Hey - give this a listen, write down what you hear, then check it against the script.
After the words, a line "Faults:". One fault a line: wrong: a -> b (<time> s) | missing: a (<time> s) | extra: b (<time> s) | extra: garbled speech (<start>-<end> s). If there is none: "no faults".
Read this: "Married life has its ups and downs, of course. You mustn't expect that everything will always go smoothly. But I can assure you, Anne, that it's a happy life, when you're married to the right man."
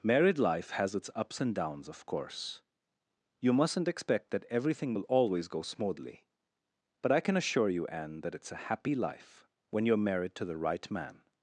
"Married life has its ups and downs, of course. You mustn't expect that everything will always go smoothly. But I can assure you, Anne, that it's a happy life, when you're married to the right man."
Faults:
no faults